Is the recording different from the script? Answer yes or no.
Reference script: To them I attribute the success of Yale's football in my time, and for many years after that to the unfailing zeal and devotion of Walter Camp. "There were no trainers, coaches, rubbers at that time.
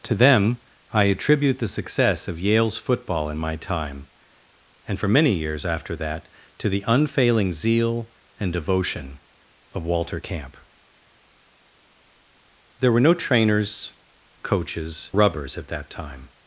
no